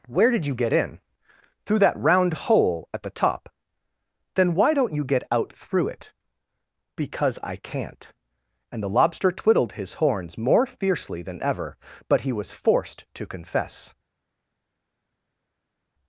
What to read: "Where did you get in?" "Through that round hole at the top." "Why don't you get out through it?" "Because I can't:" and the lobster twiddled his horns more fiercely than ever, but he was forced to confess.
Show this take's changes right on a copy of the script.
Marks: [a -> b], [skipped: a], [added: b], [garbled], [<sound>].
"Where did you get in?" "Through that round hole at the top." [added: Then] "Why don't you get out through it?" "Because I can't:" and the lobster twiddled his horns more fiercely than ever, but he was forced to confess.